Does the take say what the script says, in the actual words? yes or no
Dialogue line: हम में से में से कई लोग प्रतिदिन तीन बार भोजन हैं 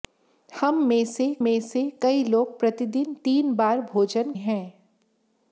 yes